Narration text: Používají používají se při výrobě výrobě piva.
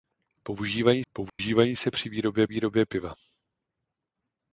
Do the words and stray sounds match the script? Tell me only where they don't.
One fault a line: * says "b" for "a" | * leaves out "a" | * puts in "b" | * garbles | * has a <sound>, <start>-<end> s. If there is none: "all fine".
* has a dropout, 1.3-1.4 s